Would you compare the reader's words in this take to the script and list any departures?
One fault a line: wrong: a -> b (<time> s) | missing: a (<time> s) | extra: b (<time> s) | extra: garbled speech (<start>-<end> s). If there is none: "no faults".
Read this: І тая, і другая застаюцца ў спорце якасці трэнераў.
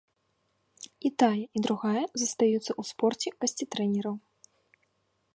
no faults